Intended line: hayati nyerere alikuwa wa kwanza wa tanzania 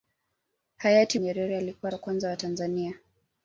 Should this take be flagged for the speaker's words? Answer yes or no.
no